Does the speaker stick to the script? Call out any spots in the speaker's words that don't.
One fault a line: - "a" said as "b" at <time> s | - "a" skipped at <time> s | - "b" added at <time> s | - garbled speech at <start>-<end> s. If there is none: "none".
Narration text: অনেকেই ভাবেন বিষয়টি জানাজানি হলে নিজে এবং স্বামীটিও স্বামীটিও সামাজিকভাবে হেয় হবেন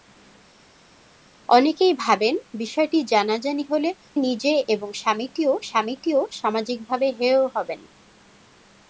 none